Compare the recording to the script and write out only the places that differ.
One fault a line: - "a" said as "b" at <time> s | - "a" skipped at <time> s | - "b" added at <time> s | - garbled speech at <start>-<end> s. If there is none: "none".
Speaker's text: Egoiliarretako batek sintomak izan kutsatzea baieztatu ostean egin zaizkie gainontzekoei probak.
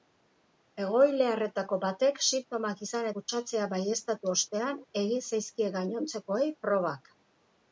none